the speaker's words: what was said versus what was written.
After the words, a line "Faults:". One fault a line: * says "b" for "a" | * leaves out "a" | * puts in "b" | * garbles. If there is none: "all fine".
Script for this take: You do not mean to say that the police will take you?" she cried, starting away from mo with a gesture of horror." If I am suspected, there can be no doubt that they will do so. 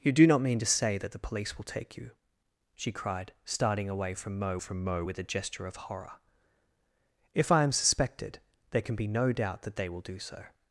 You do not mean to say that the police will take you?" she cried, starting away from mo from mo with a gesture of horror." If I am suspected, there can be no doubt that they will do so.
Faults:
* puts in "from mo"